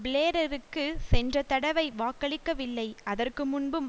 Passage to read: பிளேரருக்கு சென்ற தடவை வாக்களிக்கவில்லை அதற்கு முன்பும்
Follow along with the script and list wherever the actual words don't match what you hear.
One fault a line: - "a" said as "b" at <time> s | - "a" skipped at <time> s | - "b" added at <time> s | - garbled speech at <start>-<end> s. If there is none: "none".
none